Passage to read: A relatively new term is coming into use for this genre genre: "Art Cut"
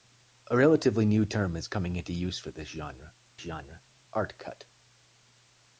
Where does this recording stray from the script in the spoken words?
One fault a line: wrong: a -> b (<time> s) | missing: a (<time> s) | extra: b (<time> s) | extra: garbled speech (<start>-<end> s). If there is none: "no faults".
no faults